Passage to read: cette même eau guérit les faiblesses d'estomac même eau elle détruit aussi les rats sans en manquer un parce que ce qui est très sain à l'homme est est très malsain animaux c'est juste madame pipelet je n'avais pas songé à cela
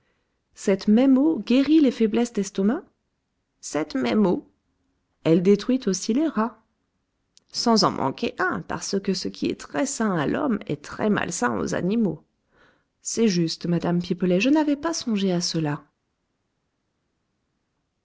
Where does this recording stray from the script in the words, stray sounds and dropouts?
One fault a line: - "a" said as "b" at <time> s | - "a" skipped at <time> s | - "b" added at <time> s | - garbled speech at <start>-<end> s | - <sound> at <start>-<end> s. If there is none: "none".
- "cette" added at 3.6 s
- "est" skipped at 10.8 s
- "aux" added at 11.6 s